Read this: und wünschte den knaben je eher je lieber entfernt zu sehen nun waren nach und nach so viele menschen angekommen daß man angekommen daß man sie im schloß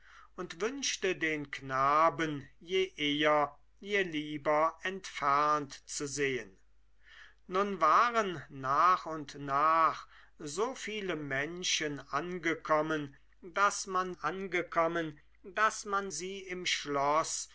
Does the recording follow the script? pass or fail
pass